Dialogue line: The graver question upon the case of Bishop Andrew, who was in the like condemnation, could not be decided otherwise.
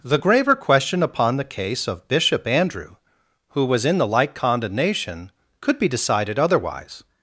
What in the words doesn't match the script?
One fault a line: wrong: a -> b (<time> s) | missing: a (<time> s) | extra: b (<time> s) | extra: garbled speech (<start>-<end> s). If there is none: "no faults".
missing: not (5.8 s)